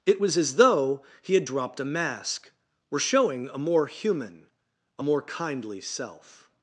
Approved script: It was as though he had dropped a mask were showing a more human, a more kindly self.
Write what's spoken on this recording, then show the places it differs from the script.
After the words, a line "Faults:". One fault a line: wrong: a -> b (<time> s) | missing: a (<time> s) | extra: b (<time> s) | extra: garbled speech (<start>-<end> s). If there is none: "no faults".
It was as though he had dropped a mask were showing a more human, a more kindly self.
Faults:
no faults